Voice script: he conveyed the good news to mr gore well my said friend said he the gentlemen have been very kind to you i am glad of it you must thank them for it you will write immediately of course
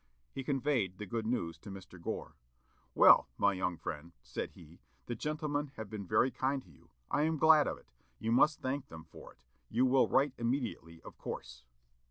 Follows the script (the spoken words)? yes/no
no